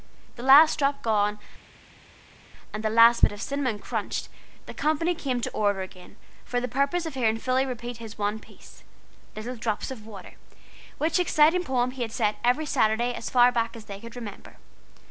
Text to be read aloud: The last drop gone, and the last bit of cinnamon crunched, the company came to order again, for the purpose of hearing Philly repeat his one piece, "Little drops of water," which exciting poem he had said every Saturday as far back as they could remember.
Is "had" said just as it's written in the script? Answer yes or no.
yes